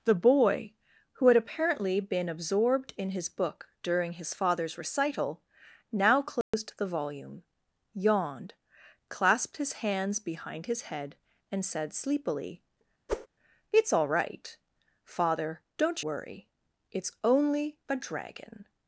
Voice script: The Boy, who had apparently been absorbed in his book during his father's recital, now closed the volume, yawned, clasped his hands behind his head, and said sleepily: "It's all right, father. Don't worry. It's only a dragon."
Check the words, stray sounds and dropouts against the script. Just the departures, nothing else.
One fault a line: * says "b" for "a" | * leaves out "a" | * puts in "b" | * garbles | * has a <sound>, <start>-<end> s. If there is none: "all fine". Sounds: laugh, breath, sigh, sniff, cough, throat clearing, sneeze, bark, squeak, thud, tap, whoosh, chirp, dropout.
* has a dropout, 6.4-6.5 s
* has a whoosh, 13.1-13.3 s